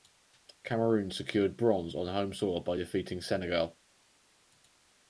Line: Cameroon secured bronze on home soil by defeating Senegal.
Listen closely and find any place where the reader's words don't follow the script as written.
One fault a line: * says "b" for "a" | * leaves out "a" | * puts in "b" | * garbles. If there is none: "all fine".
all fine